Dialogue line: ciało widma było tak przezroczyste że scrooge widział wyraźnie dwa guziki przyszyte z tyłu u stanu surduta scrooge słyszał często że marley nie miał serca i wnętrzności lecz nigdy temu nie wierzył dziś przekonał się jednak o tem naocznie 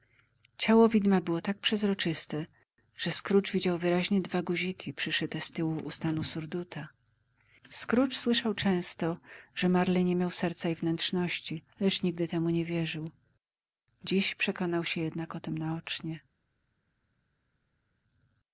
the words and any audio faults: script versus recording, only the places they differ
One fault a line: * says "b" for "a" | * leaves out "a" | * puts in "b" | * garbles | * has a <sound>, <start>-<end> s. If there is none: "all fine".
all fine